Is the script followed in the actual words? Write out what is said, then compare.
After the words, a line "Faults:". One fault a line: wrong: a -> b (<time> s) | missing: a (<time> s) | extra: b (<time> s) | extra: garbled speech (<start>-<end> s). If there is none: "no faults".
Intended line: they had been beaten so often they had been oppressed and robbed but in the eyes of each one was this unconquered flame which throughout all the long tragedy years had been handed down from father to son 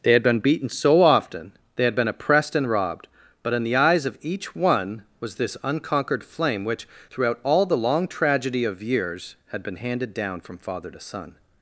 they had been beaten so often they had been oppressed and robbed but in the eyes of each one was this unconquered flame which throughout all the long tragedy of years had been handed down from father to son
Faults:
extra: of (8.6 s)